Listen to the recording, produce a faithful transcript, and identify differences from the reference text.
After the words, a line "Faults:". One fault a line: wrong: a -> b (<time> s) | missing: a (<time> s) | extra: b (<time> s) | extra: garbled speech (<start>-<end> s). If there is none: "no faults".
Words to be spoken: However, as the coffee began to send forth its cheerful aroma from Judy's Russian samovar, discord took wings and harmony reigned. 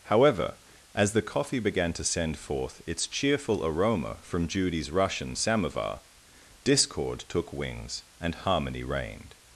However, as the coffee began to send forth its cheerful aroma from Judy's Russian samovar, discord took wings and harmony reigned.
Faults:
no faults